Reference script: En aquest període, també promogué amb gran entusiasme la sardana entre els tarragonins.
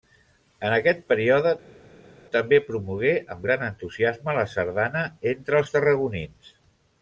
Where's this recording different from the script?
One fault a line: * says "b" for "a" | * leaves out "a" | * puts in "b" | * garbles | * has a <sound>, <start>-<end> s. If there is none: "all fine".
all fine